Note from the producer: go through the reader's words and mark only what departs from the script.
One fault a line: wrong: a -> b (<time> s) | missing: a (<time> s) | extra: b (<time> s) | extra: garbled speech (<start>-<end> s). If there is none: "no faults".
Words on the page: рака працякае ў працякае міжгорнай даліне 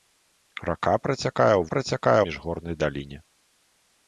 no faults